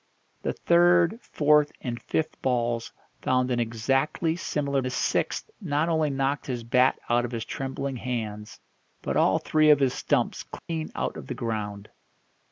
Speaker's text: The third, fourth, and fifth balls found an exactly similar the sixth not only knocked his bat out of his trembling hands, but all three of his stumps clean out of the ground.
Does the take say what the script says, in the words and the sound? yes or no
no